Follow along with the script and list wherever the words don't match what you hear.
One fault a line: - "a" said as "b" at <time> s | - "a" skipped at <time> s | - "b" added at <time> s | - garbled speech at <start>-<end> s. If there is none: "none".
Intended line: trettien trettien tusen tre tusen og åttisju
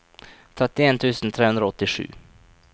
- "trettien" skipped at 1.0 s
- "tusen" said as "hundre" at 1.5 s